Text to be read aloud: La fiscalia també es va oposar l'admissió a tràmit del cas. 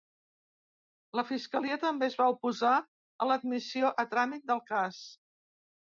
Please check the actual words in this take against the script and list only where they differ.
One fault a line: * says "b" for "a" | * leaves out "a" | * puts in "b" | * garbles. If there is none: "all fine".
* puts in "a"